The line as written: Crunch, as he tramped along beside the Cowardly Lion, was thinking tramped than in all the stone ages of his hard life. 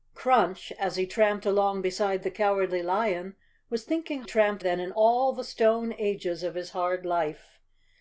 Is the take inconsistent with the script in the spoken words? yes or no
no